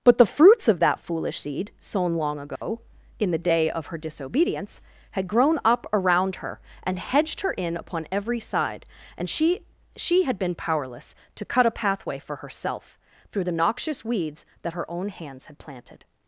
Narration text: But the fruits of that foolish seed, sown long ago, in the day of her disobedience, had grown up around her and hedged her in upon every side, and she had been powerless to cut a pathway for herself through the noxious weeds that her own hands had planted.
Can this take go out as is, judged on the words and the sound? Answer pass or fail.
fail